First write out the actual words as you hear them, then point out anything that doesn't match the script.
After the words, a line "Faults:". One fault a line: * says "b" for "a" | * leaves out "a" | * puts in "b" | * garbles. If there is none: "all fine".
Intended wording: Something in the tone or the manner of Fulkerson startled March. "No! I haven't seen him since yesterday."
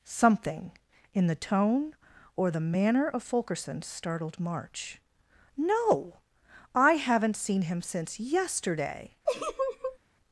Something in the tone or the manner of Fulkerson startled March. "No! I haven't seen him since yesterday."
Faults:
all fine